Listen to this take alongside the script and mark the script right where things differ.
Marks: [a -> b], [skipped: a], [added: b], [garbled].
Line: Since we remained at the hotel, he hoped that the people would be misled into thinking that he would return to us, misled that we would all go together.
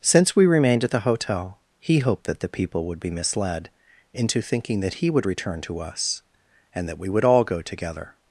Since we remained at the hotel, he hoped that the people would be misled into thinking that he would return to us, [misled -> and] that we would all go together.